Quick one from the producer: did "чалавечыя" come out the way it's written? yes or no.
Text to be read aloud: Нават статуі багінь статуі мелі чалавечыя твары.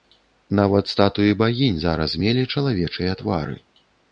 yes